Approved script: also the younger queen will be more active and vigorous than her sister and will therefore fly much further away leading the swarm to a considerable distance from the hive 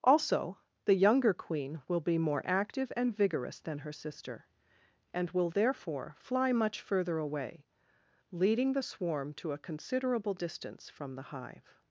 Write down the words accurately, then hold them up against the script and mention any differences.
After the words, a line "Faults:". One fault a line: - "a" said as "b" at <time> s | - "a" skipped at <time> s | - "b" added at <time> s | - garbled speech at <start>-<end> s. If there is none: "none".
also the younger queen will be more active and vigorous than her sister and will therefore fly much further away leading the swarm to a considerable distance from the hive
Faults:
none